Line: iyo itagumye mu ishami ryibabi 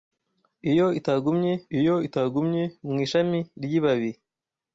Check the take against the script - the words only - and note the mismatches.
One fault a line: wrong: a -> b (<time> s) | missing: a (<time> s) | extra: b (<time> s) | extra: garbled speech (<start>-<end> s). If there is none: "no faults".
extra: iyo itagumye (1.8 s)